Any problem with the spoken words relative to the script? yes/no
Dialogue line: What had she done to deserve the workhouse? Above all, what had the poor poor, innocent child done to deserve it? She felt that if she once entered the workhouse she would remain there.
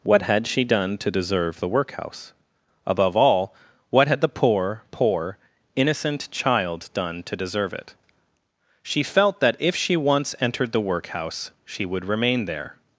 no